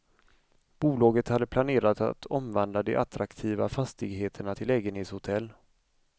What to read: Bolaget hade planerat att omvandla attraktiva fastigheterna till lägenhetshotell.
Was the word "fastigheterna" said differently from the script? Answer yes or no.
no